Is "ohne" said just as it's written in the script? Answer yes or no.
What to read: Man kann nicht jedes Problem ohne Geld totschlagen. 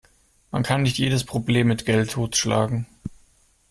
no